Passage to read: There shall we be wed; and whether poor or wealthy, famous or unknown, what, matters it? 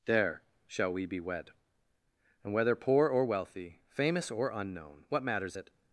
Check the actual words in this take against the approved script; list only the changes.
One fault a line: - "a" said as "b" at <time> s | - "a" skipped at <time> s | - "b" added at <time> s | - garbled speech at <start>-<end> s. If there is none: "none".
none